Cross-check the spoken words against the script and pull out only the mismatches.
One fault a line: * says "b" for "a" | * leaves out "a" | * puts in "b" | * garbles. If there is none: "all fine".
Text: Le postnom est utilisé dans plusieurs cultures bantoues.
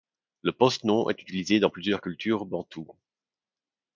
all fine